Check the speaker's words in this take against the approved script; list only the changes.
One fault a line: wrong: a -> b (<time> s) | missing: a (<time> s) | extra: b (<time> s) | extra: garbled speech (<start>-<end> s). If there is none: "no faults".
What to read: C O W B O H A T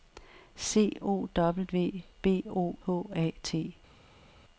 no faults